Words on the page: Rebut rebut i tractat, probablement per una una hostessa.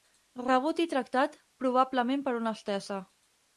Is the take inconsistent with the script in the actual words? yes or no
yes